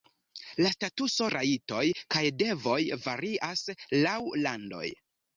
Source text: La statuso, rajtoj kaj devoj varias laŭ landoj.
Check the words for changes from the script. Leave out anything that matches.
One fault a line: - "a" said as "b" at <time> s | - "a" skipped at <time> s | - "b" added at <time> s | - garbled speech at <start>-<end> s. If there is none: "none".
none